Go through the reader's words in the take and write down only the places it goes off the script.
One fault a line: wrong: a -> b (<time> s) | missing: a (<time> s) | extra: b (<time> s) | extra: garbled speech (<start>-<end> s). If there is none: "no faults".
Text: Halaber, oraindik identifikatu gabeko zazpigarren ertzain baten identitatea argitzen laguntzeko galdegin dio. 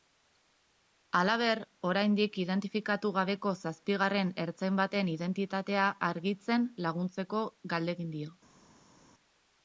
no faults